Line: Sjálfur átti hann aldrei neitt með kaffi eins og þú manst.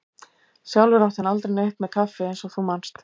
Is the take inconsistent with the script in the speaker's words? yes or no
no